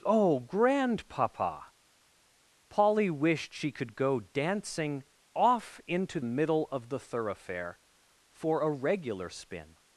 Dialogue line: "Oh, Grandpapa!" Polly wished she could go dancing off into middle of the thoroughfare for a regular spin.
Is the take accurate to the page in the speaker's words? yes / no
yes